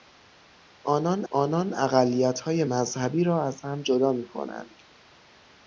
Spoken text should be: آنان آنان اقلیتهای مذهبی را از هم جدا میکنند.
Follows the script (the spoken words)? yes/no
yes